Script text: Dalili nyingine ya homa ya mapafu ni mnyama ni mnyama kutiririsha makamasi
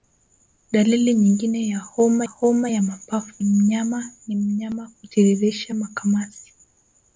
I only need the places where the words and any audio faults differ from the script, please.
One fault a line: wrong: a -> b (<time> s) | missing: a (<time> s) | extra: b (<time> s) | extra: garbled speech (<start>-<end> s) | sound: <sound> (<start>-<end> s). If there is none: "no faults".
extra: homa (2.2 s)
missing: ni (3.4 s)